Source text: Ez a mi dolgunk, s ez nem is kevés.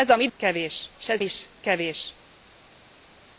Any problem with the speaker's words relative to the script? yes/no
yes